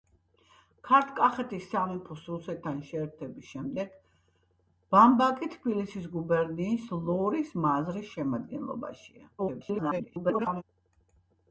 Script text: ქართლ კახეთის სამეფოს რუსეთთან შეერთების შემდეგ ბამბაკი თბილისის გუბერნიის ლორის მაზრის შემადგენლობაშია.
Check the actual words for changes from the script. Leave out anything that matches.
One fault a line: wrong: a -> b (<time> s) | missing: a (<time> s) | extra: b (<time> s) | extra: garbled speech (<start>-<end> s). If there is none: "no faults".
extra: garbled speech (9.4-10.6 s)